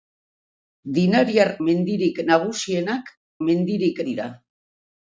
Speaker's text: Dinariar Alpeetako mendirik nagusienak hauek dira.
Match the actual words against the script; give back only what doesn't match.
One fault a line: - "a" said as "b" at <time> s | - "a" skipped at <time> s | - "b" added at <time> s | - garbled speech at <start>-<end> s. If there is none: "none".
- "Alpeetako" skipped at 1.5 s
- "hauek" said as "mendirik" at 3.5 s